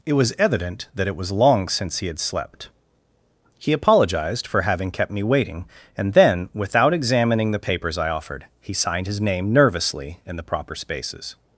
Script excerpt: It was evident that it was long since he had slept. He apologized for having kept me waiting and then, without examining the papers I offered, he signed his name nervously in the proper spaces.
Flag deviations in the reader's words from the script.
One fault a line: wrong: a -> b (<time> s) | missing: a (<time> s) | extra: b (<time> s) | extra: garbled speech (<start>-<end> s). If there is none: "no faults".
no faults